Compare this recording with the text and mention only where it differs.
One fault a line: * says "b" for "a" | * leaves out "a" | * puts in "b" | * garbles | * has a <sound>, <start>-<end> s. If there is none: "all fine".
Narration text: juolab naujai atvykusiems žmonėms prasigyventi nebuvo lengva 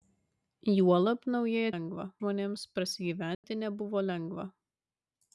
* says "lengva" for "atvykusiems"
* has a dropout, 3.3-3.4 s